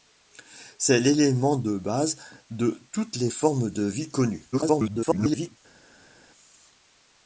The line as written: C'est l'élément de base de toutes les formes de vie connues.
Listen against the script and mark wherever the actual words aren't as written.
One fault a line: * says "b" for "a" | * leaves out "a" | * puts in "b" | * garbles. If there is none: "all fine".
* garbles